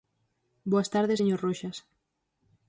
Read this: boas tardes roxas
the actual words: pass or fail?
fail